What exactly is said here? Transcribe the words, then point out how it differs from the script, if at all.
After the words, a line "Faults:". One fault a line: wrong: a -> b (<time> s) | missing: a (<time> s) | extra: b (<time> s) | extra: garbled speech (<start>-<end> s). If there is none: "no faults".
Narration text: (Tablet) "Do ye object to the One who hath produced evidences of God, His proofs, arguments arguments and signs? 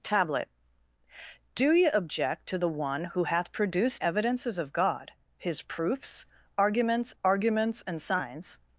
(Tablet) "Do ye object to the One who hath produced evidences of God, His proofs, arguments arguments and signs?
Faults:
no faults